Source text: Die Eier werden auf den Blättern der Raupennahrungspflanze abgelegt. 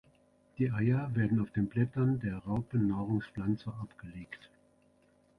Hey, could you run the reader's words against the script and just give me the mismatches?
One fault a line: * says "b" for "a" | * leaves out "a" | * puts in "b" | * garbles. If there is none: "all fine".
all fine